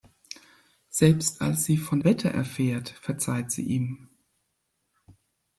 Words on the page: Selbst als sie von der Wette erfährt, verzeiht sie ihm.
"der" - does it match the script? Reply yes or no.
no